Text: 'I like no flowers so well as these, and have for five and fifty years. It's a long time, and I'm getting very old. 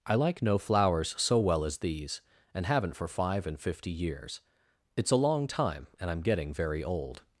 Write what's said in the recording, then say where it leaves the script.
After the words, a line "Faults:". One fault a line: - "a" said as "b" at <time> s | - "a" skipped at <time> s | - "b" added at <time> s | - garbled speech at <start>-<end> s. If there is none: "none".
'I like no flowers so well as these, and haven't for five and fifty years. It's a long time, and I'm getting very old.
Faults:
- "have" said as "haven't" at 2.6 s